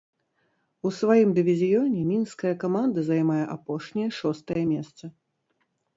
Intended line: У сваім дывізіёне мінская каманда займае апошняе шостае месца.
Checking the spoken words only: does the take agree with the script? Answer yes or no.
yes